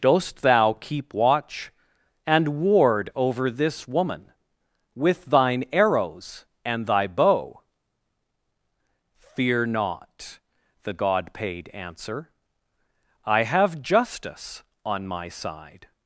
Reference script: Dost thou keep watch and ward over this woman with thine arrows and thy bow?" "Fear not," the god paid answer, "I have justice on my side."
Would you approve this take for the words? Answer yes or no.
yes